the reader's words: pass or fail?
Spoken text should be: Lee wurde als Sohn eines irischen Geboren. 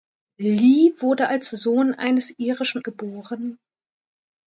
pass